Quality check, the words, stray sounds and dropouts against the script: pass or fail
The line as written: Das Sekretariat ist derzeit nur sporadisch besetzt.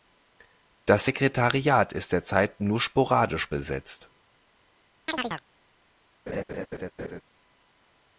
fail